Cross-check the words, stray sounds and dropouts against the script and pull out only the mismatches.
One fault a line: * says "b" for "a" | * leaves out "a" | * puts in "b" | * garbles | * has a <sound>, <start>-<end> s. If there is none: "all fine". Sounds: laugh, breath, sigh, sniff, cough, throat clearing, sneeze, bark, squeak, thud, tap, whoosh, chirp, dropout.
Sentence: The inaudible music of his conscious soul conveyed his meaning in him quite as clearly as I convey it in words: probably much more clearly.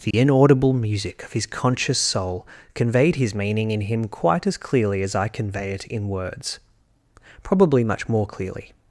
* has a dropout, 0.1-0.1 s